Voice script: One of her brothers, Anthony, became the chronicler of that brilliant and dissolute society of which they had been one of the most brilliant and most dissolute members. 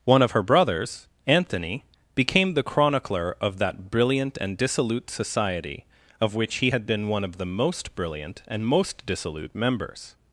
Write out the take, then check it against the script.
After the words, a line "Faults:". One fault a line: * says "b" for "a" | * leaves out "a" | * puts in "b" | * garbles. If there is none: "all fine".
One of her brothers, Anthony, became the chronicler of that brilliant and dissolute society of which he had been one of the most brilliant and most dissolute members.
Faults:
* says "he" for "they"